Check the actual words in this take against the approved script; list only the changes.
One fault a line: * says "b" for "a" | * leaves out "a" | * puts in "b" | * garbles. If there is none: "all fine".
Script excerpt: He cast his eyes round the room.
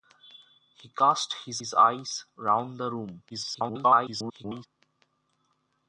* puts in "his"
* garbles